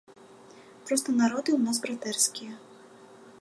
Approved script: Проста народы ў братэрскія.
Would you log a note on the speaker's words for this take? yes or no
yes